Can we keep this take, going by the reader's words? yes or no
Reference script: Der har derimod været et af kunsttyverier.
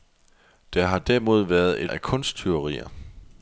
yes